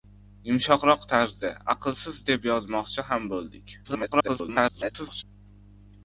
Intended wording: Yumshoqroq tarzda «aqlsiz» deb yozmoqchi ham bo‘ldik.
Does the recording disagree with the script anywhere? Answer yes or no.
yes